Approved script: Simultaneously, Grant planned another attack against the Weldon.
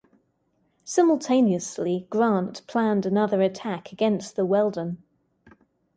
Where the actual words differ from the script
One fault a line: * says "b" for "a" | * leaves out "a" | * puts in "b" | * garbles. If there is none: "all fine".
all fine